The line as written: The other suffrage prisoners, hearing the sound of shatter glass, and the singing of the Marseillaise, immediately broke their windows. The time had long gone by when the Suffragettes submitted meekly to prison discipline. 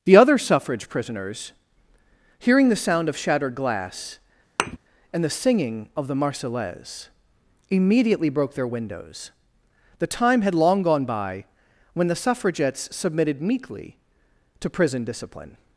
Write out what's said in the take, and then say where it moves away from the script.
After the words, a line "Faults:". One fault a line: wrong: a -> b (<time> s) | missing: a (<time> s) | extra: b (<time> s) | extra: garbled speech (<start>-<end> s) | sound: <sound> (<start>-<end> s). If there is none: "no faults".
The other suffrage prisoners, hearing the sound of shattered glass, and the singing of the Marseillaise, immediately broke their windows. The time had long gone by when the Suffragettes submitted meekly to prison discipline.
Faults:
wrong: shatter -> shattered (3.1 s)
sound: thud (4.6-4.8 s)